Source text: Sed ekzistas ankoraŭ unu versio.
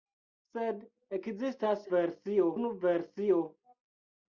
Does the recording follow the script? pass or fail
fail